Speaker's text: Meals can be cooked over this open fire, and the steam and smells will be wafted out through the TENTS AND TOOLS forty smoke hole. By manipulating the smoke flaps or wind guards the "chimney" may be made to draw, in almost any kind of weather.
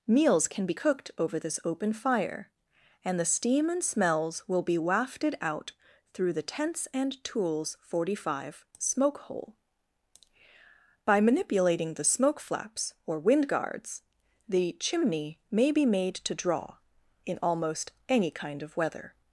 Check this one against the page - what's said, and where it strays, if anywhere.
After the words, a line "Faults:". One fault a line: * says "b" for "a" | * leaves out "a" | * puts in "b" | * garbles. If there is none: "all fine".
Meals can be cooked over this open fire, and the steam and smells will be wafted out through the TENTS AND TOOLS forty five smoke hole. By manipulating the smoke flaps or wind guards the "chimney" may be made to draw, in almost any kind of weather.
Faults:
* puts in "five"